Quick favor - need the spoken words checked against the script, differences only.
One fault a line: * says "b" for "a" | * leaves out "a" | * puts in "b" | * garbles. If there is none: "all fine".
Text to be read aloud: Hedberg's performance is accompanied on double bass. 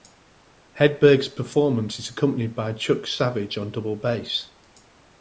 * puts in "by Chuck Savage"